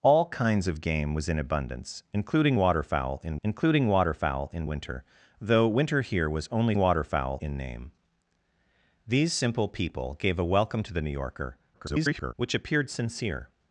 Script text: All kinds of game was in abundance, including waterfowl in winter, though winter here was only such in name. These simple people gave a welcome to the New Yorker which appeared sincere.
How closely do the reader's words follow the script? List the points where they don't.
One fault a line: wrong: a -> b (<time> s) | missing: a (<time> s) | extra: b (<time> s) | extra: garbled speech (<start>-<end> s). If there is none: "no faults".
extra: including waterfowl in (3.4 s)
wrong: such -> waterfowl (6.7 s)
extra: garbled speech (11.7-12.3 s)